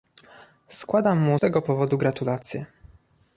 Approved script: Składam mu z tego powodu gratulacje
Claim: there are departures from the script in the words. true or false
true